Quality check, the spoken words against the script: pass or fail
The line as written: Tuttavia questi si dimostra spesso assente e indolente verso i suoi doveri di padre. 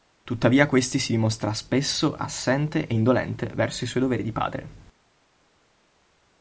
pass